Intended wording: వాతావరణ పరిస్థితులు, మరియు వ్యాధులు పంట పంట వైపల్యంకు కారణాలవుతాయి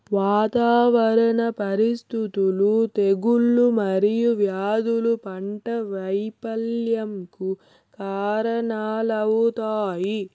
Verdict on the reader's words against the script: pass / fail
fail